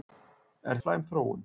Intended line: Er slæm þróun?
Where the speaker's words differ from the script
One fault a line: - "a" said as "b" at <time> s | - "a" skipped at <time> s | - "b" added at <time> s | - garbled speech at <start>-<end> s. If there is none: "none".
none